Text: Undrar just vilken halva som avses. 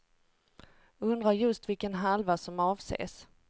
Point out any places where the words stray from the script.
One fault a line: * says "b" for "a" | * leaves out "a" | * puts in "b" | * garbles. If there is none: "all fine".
all fine